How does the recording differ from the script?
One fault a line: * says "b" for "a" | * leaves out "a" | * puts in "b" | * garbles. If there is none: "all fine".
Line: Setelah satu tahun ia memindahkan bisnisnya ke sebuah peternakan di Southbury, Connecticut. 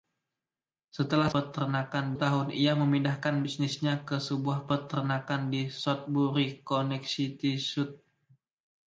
* says "peternakan" for "satu"